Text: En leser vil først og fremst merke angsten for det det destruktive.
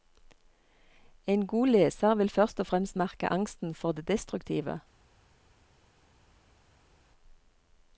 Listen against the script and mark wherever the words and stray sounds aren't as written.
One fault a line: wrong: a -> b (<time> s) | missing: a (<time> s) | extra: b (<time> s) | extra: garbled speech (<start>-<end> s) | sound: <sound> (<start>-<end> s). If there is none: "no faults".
extra: god (1.5 s)
missing: det (4.1 s)